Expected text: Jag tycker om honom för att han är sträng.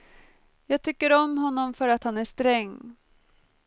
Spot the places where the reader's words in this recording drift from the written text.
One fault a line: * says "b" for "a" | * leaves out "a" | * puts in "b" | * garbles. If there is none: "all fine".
all fine